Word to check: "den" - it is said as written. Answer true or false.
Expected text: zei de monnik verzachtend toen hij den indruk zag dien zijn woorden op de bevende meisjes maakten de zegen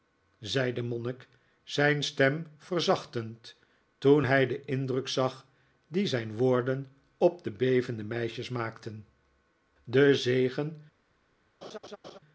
true